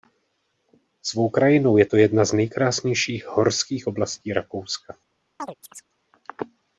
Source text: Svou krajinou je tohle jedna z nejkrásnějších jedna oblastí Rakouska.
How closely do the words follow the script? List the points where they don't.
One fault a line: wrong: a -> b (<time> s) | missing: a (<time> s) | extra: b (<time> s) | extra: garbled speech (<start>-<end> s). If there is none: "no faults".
wrong: tohle -> to (1.8 s)
wrong: jedna -> horských (3.3 s)